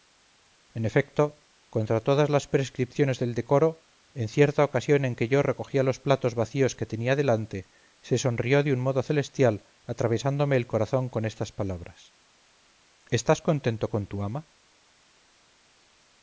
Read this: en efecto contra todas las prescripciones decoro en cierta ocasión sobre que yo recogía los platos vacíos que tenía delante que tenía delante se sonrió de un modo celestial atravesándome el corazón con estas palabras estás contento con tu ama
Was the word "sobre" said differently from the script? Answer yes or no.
yes